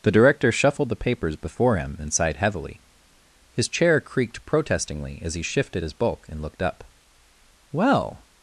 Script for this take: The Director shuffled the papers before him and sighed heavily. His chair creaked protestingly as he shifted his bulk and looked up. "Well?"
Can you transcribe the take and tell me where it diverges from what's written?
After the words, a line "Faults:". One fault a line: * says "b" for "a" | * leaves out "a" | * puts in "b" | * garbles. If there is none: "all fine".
The Director shuffled the papers before him and sighed heavily. His chair creaked protestingly as he shifted his bulk and looked up. "Well?"
Faults:
all fine